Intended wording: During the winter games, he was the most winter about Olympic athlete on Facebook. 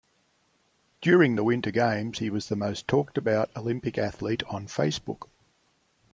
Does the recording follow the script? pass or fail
fail